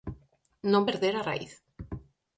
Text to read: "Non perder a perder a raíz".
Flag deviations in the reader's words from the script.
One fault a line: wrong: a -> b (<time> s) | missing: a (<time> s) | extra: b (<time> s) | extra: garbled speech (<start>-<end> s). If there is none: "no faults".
missing: perder a (1.3 s)